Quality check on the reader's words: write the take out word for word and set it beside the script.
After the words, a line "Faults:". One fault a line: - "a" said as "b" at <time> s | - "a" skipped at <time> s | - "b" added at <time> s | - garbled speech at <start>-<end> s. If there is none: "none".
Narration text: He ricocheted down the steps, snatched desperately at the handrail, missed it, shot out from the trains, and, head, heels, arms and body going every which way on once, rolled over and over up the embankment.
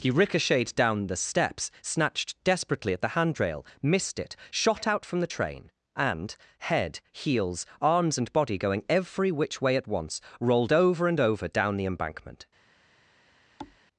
He ricocheted down the steps, snatched desperately at the handrail, missed it, shot out from the train, and, head, heels, arms and body going every which way at once, rolled over and over down the embankment.
Faults:
- "trains" said as "train" at 5.3 s
- "on" said as "at" at 9.8 s
- "up" said as "down" at 11.5 s